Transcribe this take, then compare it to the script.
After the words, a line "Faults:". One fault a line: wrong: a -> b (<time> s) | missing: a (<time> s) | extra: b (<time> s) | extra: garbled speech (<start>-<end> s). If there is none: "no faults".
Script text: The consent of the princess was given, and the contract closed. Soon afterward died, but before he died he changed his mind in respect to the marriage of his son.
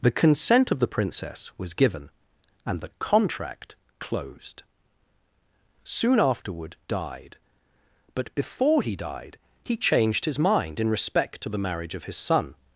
The consent of the princess was given, and the contract closed. Soon afterward died, but before he died he changed his mind in respect to the marriage of his son.
Faults:
no faults